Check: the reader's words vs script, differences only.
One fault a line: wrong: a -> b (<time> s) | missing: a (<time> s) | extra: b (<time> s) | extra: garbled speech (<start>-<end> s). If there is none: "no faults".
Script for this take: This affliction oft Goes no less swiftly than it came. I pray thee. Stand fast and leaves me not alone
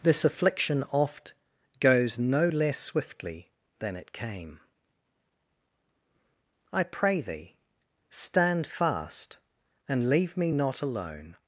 wrong: leaves -> leave (10.1 s)